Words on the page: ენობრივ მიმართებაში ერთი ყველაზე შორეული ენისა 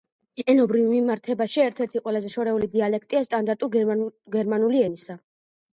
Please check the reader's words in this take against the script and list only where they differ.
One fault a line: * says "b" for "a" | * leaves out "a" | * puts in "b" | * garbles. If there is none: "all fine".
* puts in "ერთ"
* puts in "დიალექტია სტანდარტული გერმანული"